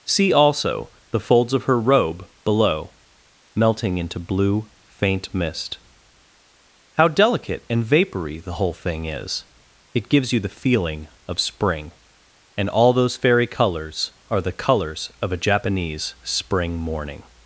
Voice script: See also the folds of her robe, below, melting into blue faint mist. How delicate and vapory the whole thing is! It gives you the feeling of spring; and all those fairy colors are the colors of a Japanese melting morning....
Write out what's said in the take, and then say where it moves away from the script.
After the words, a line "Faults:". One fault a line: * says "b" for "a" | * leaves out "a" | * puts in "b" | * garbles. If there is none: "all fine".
See also the folds of her robe, below, melting into blue faint mist. How delicate and vapory the whole thing is! It gives you the feeling of spring; and all those fairy colors are the colors of a Japanese spring morning....
Faults:
* says "spring" for "melting"